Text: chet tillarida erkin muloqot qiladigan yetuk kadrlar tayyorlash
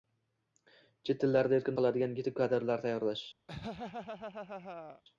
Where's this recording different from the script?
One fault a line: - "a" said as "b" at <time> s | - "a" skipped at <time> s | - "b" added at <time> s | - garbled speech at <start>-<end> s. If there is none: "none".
- "muloqot" skipped at 1.8 s